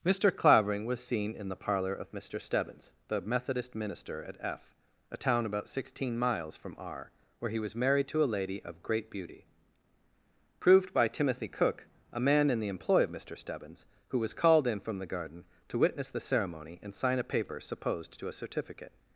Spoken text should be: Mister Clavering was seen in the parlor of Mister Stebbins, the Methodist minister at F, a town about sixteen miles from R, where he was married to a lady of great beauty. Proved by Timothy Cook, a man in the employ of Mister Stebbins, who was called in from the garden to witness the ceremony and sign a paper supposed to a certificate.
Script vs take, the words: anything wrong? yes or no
no